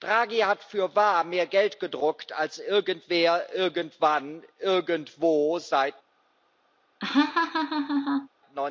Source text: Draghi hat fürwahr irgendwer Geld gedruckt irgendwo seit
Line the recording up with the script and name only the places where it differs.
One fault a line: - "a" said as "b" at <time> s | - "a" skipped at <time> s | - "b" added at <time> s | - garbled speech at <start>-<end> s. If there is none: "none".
- "irgendwer" said as "mehr" at 1.2 s
- "als irgendwer irgendwann" added at 2.3 s